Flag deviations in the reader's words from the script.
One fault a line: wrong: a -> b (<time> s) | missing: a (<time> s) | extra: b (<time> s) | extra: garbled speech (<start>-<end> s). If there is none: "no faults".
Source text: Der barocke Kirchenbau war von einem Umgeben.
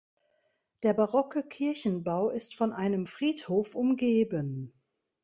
wrong: war -> ist (2.3 s)
extra: Friedhof (3.0 s)